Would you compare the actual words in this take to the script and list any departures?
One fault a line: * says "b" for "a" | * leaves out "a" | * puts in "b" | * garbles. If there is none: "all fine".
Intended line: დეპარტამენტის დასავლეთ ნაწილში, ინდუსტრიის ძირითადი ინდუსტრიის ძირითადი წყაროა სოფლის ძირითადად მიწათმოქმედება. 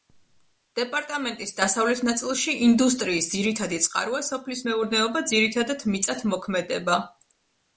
* leaves out "ინდუსტრიის ძირითადი"
* puts in "მეურნეობა"